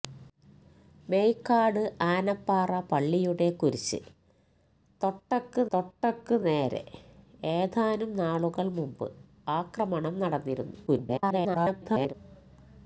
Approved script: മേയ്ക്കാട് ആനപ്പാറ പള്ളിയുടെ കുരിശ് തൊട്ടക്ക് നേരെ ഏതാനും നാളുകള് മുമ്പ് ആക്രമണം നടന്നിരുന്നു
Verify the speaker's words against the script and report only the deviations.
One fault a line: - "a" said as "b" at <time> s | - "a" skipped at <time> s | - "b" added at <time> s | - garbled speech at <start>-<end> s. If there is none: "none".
- "തൊട്ടക്ക്" added at 5.7 s
- garbled speech at 10.9-12.1 s